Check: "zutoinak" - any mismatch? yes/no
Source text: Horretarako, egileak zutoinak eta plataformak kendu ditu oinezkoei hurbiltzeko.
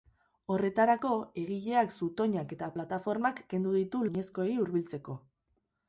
no